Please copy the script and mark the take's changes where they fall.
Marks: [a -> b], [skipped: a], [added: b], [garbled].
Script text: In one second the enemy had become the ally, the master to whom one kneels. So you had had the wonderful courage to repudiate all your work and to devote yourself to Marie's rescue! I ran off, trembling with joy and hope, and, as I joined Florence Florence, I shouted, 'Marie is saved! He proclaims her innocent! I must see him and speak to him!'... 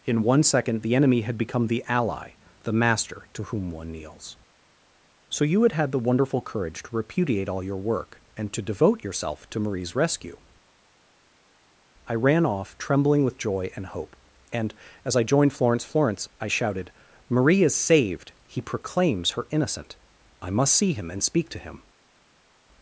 In one second the enemy had become the ally, the master to whom one kneels. So you had had the wonderful courage to repudiate all your work and to devote yourself to Marie's rescue! I ran off, trembling with joy and hope, and, as I joined Florence Florence, I shouted, 'Marie is saved! He proclaims her innocent! I must see him and speak to him!'...